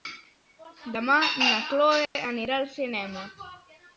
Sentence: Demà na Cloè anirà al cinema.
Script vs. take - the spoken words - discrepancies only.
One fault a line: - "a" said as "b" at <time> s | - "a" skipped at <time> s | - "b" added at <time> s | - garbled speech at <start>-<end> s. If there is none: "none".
none